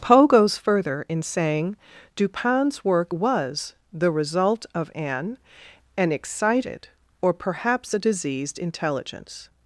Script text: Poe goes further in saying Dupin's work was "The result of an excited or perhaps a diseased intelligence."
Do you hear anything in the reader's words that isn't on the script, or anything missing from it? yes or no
yes